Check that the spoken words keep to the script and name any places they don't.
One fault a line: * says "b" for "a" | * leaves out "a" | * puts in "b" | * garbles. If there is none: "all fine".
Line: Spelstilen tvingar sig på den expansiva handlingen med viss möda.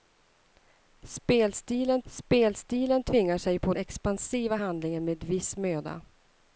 * puts in "spelstilen"
* leaves out "den"